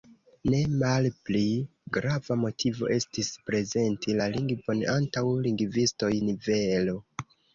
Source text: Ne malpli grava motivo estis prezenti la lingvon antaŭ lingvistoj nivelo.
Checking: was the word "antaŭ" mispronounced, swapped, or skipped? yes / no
no